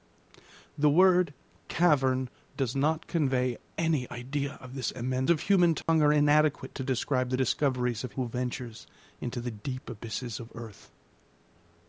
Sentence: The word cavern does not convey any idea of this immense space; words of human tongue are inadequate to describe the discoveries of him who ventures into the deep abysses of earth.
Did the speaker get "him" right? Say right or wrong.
wrong